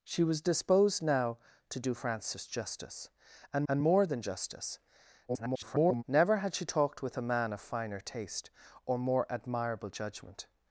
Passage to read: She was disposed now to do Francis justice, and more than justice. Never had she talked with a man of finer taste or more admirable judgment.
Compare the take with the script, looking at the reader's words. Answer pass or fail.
fail